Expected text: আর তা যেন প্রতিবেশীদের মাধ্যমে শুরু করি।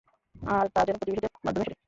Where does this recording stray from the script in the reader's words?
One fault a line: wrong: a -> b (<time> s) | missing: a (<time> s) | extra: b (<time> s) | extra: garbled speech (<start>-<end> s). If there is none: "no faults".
missing: শুরু (1.7 s)